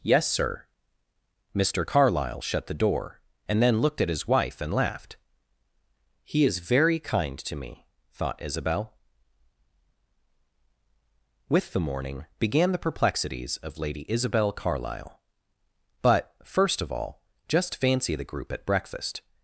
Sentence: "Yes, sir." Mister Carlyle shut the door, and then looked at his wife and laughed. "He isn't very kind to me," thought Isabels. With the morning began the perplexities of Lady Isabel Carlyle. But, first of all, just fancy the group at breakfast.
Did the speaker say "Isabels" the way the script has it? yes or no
no